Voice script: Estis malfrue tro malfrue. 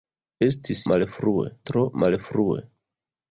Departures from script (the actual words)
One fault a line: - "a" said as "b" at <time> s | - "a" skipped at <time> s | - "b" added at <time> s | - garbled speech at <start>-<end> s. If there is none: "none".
none